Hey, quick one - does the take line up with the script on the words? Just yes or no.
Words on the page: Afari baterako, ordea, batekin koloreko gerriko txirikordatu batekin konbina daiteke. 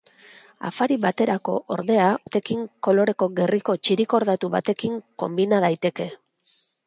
yes